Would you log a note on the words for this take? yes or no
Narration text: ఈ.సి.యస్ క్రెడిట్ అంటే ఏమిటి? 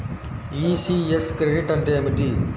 no